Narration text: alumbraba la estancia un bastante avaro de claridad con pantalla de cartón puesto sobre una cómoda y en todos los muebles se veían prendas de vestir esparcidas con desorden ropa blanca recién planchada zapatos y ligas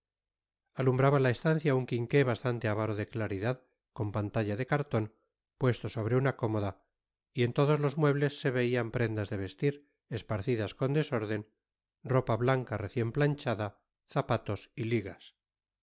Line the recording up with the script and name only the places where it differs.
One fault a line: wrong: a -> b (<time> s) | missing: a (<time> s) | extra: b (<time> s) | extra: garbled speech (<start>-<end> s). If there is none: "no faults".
extra: quinqué (1.9 s)